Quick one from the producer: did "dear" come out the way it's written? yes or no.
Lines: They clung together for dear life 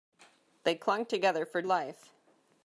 no